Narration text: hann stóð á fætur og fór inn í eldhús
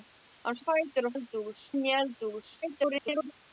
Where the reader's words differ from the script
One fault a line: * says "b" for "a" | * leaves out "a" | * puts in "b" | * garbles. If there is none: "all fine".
* leaves out "stóð"
* says "eldhús" for "fór"
* garbles